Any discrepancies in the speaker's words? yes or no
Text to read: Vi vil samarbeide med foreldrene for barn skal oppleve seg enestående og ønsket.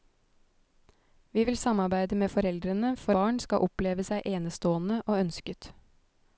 no